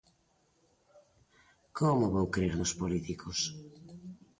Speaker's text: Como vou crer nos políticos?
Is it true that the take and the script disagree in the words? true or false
false